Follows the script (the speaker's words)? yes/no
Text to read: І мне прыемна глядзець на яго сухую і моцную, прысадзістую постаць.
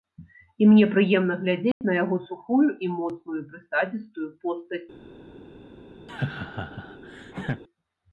yes